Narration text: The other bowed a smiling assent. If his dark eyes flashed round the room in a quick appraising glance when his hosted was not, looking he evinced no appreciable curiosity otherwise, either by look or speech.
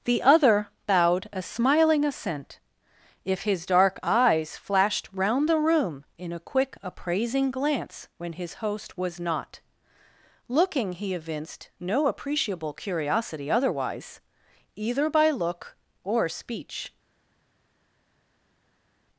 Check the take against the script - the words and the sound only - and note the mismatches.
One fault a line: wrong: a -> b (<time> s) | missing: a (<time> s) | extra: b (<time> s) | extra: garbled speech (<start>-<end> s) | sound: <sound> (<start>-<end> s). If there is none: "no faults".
wrong: hosted -> host (8.5 s)